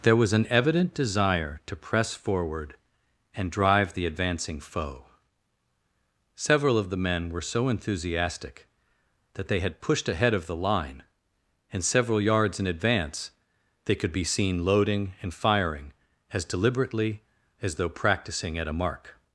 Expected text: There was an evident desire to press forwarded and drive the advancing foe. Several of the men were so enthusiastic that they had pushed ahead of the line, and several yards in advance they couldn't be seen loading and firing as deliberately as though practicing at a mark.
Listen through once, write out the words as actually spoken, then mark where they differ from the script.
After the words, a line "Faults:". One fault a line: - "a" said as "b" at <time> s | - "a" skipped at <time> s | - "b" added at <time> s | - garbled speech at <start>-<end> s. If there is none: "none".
There was an evident desire to press forward and drive the advancing foe. Several of the men were so enthusiastic that they had pushed ahead of the line, and several yards in advance they could be seen loading and firing as deliberately as though practicing at a mark.
Faults:
- "forwarded" said as "forward" at 2.1 s
- "couldn't" said as "could" at 14.0 s